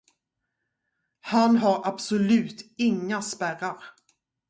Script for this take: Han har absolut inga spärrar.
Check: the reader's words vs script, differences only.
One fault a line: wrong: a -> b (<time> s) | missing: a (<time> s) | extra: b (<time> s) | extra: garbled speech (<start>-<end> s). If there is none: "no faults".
no faults